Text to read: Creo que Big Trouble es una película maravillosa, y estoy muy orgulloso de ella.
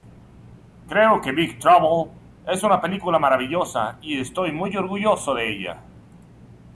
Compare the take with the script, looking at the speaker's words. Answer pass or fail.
pass